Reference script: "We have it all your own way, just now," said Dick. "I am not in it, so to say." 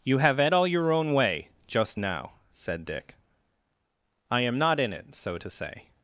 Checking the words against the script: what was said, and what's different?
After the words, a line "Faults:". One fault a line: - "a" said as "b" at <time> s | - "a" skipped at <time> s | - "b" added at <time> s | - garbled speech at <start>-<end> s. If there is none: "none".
"You have it all your own way, just now," said Dick. "I am not in it, so to say."
Faults:
- "We" said as "You" at 0.0 s